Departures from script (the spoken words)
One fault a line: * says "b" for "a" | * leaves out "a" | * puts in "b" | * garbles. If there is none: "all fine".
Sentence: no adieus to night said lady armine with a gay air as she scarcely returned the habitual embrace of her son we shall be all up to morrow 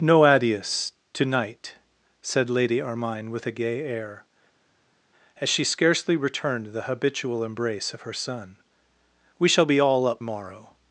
* leaves out "to"